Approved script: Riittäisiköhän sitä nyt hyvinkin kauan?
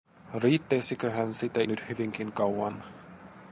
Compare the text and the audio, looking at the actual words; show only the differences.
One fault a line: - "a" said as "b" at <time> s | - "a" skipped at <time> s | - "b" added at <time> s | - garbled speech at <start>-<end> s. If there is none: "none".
none